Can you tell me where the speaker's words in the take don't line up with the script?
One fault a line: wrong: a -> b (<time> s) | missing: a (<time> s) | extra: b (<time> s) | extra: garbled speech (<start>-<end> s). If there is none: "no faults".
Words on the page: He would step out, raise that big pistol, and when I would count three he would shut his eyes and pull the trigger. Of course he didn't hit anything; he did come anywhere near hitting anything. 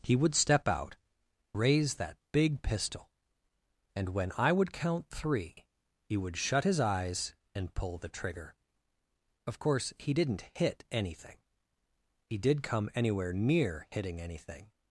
no faults